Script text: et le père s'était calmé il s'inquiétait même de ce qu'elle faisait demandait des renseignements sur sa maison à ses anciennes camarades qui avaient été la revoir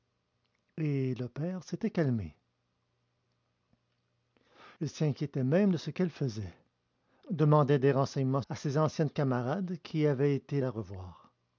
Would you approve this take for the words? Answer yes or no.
no